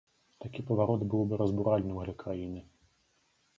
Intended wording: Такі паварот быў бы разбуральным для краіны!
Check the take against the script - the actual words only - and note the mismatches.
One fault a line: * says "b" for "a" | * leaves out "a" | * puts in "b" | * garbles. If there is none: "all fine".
all fine